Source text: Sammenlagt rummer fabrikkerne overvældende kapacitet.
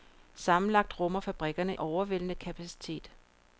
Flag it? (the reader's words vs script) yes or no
no